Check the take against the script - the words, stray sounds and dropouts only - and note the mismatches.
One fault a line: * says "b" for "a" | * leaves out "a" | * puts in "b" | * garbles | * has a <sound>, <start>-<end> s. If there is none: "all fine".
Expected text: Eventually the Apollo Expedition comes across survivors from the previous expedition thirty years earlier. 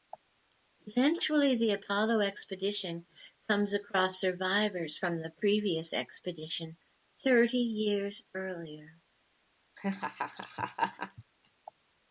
* has a laugh, 9.8-11.2 s